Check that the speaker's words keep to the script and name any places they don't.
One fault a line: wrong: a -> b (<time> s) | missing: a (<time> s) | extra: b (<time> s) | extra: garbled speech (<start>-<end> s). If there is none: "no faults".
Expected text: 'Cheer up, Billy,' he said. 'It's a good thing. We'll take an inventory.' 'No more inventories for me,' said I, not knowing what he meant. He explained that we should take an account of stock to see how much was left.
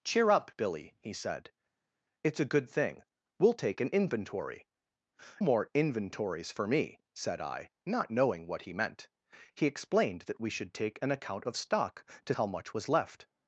missing: No (4.7 s)
missing: see (12.3 s)